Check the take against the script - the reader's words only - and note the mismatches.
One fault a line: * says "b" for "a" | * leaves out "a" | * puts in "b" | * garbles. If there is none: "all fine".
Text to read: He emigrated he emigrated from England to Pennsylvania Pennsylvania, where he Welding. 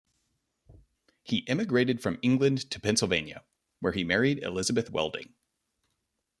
* leaves out "he emigrated"
* leaves out "Pennsylvania"
* puts in "married Elizabeth"